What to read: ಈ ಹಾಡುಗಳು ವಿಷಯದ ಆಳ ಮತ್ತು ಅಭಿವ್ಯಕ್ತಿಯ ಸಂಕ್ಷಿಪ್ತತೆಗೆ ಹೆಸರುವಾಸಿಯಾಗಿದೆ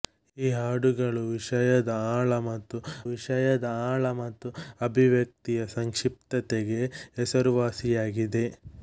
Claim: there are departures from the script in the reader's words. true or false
true